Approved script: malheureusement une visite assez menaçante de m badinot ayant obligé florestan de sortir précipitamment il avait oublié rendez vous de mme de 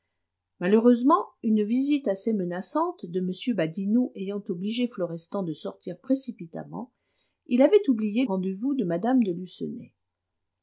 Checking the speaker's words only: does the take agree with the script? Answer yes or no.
yes